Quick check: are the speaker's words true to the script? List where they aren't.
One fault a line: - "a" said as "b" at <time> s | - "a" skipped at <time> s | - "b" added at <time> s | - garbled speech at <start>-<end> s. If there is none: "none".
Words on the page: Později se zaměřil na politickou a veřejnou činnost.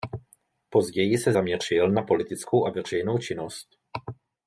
none